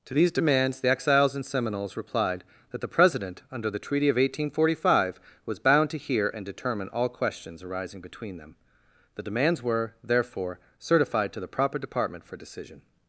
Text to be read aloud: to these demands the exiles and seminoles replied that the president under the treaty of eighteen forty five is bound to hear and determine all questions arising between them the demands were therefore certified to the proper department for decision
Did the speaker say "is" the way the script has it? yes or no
no